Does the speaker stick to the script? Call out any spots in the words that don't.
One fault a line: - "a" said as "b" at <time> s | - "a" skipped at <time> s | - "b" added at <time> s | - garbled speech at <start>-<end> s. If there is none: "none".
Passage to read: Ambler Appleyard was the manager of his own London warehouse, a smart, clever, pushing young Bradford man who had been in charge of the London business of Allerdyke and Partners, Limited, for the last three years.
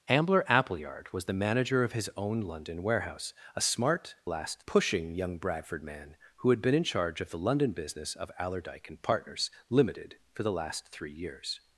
- "clever" said as "last" at 4.3 s